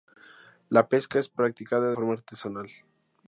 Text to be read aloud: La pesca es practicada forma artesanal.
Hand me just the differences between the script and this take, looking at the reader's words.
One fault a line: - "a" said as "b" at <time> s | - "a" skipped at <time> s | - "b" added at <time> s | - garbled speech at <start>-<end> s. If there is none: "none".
none